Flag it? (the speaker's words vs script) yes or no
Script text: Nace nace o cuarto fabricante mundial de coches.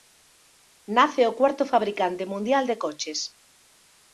yes